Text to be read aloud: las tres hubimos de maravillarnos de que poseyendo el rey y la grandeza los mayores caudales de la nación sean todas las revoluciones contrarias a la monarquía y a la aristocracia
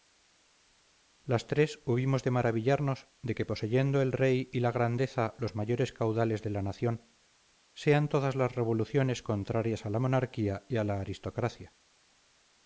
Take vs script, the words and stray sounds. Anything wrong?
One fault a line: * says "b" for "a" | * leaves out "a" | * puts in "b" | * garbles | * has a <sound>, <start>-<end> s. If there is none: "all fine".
all fine